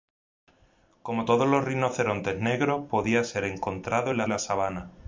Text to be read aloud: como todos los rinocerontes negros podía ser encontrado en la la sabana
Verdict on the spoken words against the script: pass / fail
pass